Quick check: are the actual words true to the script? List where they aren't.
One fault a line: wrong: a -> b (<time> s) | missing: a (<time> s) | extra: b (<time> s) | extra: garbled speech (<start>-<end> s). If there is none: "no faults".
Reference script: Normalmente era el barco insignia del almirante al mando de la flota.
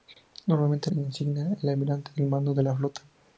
missing: era el barco (0.9 s)